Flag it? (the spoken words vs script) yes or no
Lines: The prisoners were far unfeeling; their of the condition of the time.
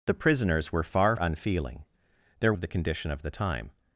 no